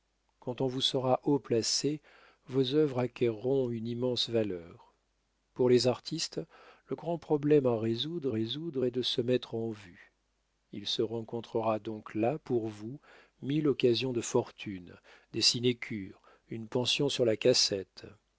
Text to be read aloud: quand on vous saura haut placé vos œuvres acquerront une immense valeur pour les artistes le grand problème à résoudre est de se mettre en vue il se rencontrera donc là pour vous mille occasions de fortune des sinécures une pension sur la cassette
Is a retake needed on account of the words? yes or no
yes